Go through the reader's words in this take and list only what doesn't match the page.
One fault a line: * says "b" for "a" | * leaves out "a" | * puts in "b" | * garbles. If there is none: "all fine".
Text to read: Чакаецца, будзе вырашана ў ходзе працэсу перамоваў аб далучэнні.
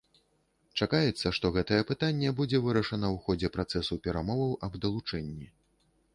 * puts in "што гэтае пытанне"